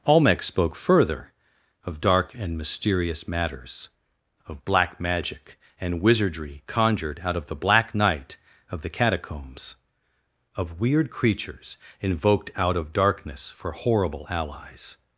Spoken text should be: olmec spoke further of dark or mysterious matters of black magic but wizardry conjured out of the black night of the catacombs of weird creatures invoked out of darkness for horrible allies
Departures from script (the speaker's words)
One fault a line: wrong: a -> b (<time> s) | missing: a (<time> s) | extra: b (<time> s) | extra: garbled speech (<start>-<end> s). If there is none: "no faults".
wrong: or -> and (2.3 s)
wrong: but -> and (5.8 s)